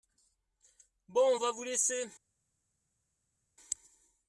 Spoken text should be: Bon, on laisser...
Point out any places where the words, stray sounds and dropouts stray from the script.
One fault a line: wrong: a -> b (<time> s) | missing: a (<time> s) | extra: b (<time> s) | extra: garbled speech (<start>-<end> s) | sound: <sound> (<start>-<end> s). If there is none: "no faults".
extra: va vous (1.4 s)